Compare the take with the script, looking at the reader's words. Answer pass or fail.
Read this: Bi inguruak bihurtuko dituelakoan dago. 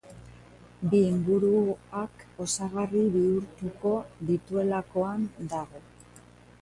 fail